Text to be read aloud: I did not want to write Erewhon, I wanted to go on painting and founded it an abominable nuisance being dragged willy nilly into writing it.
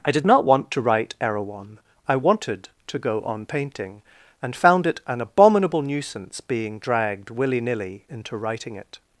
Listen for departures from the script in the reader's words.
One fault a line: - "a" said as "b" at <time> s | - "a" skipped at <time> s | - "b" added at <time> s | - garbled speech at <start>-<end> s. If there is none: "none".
- "founded" said as "found" at 4.5 s